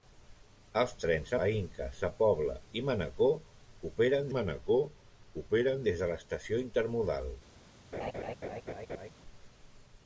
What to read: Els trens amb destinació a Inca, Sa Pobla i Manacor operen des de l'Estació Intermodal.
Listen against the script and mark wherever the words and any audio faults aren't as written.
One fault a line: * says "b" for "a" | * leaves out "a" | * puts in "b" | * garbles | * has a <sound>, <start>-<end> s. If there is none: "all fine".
* leaves out "amb destinació"
* puts in "Manacor operen"
* has a laugh, 7.9-9.1 s